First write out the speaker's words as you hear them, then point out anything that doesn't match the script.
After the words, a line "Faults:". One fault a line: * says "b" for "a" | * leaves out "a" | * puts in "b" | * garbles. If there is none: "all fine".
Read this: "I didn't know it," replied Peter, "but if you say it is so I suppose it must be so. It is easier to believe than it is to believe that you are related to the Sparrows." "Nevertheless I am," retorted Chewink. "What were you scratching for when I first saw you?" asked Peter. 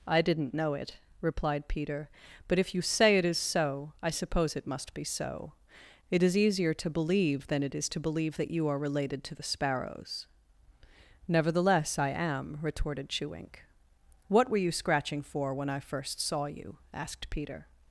"I didn't know it," replied Peter, "but if you say it is so I suppose it must be so. It is easier to believe than it is to believe that you are related to the Sparrows." "Nevertheless I am," retorted Chewink. "What were you scratching for when I first saw you?" asked Peter.
Faults:
all fine